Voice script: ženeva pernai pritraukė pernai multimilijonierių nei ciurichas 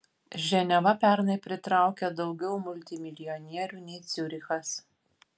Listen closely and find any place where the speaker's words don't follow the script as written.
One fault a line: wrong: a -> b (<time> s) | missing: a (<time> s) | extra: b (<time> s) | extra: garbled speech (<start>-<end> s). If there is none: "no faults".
wrong: pernai -> daugiau (2.2 s)